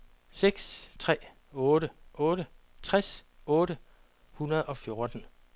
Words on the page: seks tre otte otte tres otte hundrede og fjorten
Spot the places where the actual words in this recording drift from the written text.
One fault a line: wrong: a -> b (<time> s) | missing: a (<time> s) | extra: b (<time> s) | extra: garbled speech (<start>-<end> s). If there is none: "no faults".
no faults